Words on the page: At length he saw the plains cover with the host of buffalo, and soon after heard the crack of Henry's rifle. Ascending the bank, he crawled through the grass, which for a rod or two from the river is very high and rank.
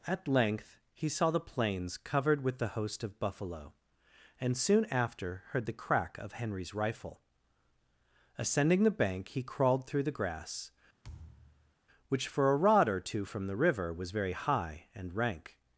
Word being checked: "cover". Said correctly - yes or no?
no